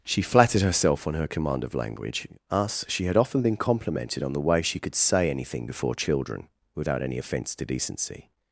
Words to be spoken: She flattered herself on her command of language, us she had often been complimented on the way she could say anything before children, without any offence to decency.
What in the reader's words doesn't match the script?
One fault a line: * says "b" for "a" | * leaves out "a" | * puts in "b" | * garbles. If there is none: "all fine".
all fine